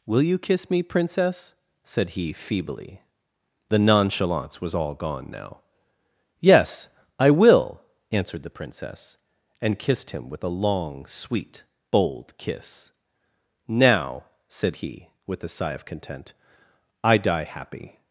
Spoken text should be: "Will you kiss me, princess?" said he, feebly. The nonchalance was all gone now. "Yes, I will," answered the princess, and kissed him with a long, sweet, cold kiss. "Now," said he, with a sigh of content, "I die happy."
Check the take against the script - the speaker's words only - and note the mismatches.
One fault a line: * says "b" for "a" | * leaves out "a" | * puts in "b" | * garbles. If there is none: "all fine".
* says "bold" for "cold"